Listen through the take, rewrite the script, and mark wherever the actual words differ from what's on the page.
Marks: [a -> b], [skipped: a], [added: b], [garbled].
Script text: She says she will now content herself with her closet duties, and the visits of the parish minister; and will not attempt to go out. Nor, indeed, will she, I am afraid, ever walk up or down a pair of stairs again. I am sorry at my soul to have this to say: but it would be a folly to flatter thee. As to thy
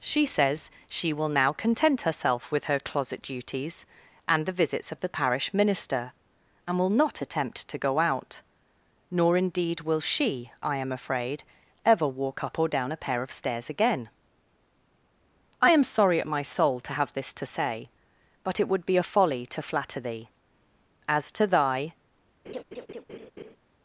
She says she will now content herself with her closet duties, and the visits of the parish minister; and will not attempt to go out. Nor, indeed, will she, I am afraid, ever walk up or down a pair of stairs again. I am sorry at my soul to have this to say: but it would be a folly to flatter thee. As to thy